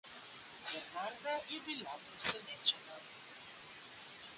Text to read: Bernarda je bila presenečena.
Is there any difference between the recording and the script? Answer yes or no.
no